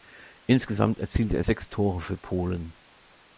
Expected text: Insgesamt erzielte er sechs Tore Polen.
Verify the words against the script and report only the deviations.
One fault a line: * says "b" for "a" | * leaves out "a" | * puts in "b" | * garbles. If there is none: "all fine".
* puts in "für"